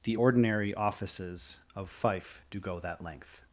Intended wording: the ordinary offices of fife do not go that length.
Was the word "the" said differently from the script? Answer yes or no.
no